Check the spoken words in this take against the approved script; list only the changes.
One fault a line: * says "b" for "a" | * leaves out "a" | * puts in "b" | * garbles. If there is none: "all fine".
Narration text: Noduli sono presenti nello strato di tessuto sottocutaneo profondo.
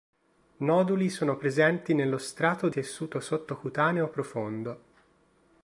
* leaves out "di"